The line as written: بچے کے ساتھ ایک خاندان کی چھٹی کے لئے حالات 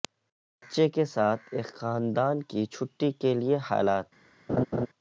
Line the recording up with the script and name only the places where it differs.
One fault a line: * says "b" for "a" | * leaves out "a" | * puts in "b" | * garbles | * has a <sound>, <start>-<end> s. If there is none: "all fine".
* has a laugh, 4.5-4.9 s